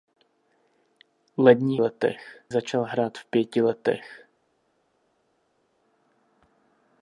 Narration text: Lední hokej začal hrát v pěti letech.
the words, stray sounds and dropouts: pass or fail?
fail